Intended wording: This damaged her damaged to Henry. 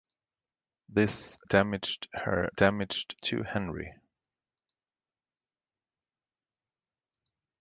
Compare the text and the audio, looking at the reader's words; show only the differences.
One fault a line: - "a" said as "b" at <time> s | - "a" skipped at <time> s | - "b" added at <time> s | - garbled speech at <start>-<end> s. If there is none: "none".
none